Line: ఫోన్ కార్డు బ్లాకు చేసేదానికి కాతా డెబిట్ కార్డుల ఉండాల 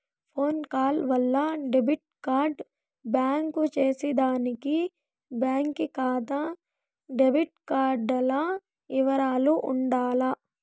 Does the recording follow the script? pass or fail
fail